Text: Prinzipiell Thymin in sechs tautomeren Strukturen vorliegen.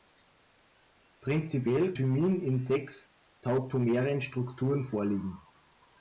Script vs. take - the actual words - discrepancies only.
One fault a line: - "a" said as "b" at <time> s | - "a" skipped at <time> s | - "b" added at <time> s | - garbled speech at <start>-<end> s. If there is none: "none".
none